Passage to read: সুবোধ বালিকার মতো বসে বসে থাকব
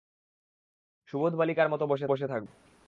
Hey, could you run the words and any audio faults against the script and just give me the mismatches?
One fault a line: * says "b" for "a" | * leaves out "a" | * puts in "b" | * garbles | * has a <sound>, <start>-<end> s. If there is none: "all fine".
all fine